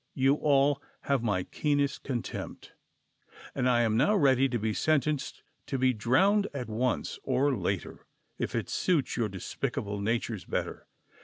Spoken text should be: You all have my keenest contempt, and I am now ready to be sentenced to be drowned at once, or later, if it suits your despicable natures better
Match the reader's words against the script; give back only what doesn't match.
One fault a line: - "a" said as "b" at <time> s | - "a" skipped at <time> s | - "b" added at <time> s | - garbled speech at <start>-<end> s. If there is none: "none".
none